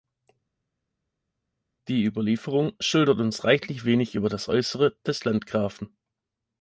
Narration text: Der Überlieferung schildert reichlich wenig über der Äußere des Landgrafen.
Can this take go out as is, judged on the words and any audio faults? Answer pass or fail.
fail